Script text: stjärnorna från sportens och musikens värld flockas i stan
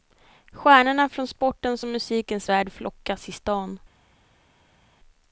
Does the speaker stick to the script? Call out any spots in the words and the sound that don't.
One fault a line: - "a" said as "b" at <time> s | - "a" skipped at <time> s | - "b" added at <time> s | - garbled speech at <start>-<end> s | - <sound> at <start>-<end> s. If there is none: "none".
none